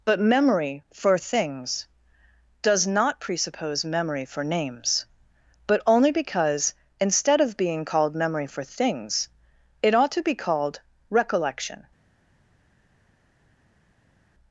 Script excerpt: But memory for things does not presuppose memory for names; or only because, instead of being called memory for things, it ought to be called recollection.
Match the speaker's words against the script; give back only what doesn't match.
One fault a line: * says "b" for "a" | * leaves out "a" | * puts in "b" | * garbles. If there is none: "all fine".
* says "but" for "or"